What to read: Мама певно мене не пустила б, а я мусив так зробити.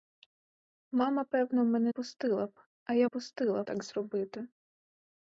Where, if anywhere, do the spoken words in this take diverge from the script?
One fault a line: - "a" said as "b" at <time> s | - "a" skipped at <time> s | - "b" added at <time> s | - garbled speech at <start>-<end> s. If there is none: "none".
- "не" skipped at 1.9 s
- "мусив" said as "пустила" at 3.0 s